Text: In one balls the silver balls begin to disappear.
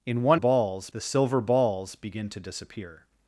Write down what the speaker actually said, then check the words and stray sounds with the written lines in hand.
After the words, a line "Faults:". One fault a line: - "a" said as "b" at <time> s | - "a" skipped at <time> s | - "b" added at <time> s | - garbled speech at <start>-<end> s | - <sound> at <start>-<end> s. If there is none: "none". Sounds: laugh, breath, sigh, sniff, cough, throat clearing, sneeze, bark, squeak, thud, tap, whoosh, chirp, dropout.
In one balls the silver balls begin to disappear.
Faults:
none